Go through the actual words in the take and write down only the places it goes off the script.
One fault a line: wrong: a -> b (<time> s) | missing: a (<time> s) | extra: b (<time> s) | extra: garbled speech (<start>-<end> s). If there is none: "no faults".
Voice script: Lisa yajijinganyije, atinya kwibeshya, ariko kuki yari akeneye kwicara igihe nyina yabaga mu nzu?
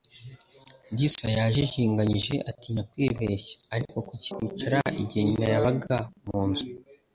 missing: yari akeneye (4.3 s)